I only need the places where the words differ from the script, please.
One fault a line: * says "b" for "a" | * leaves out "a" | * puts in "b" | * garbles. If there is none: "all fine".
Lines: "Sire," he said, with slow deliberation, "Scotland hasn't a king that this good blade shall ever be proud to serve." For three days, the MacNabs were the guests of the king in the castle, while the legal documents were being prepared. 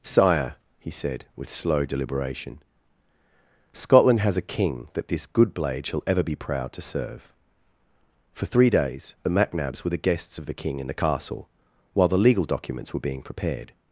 * says "has" for "hasn't"